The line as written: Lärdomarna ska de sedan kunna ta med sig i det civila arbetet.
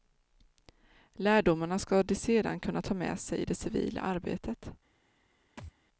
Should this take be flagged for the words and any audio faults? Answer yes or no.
yes